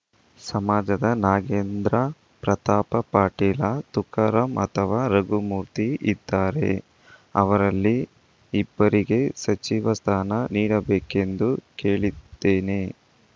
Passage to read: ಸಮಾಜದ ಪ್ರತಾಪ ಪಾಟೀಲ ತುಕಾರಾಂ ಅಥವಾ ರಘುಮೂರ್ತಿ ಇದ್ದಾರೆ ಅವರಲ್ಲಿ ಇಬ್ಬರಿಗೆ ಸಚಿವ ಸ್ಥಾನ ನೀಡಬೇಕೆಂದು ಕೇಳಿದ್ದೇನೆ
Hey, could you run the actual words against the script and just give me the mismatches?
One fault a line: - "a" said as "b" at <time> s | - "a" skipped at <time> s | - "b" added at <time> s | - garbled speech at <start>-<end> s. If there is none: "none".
- "ನಾಗೇಂದ್ರ" added at 1.2 s